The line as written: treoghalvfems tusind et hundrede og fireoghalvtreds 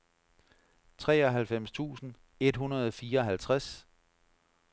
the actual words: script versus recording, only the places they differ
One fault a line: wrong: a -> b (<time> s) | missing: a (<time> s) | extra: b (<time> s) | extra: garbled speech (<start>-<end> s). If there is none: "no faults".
no faults